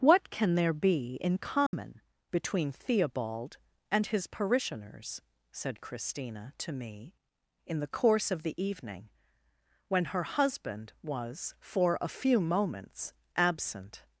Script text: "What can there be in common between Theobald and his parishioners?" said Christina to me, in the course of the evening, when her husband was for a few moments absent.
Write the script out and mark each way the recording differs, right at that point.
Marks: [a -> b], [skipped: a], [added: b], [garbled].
"What can there be in common between Theobald and his parishioners?" said Christina to me, in the course of the evening, when her husband was for a few moments absent.